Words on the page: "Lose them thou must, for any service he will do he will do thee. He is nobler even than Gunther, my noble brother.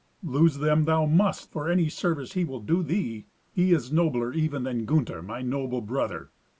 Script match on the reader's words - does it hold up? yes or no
no